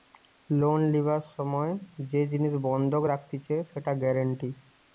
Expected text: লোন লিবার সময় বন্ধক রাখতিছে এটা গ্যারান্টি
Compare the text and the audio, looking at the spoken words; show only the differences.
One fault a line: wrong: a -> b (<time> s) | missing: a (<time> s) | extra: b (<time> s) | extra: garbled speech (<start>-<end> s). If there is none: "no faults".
extra: যে জিনিস (2.1 s)
wrong: এটা -> সেটা (3.7 s)